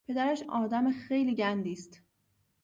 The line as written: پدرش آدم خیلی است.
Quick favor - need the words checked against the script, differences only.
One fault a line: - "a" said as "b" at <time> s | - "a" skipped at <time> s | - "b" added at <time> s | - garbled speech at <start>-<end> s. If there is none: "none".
- "گندی" added at 1.3 s